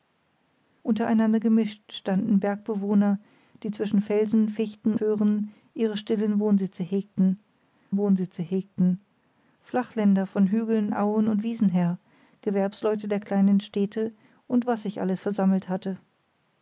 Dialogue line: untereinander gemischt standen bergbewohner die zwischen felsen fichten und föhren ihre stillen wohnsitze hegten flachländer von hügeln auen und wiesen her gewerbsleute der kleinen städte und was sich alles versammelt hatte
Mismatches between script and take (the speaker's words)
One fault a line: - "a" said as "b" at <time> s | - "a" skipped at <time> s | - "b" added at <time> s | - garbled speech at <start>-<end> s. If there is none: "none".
- "und" skipped at 5.0 s
- "wohnsitze hegten" added at 7.9 s